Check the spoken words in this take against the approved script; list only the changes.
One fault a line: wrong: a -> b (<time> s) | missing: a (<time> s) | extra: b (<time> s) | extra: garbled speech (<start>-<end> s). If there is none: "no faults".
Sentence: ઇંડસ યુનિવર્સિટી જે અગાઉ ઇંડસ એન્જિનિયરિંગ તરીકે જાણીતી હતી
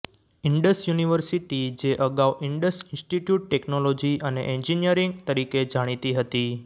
extra: ઇન્સ્ટિટ્યૂટ ટેકનોલોજી અને (2.9 s)